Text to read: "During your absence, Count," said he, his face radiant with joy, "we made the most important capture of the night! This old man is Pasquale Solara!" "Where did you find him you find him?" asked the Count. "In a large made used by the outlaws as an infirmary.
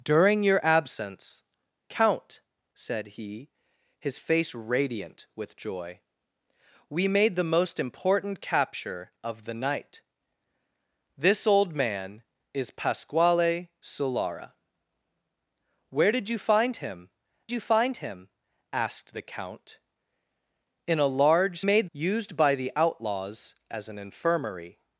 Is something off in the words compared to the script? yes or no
no